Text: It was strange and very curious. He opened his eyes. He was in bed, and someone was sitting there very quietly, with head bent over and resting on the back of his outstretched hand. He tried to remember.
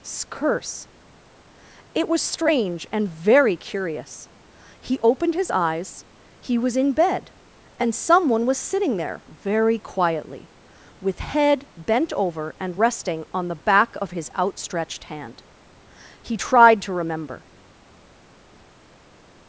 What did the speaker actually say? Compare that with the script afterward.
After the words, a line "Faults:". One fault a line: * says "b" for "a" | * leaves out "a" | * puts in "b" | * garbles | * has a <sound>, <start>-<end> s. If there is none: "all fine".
curse It was strange and very curious. He opened his eyes. He was in bed, and someone was sitting there very quietly, with head bent over and resting on the back of his outstretched hand. He tried to remember.
Faults:
* puts in "curse"